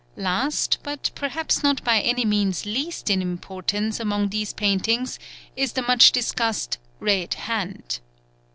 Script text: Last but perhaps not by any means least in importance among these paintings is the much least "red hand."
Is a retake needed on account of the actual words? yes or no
yes